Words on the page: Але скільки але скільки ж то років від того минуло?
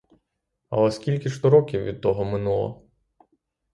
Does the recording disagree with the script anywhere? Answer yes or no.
yes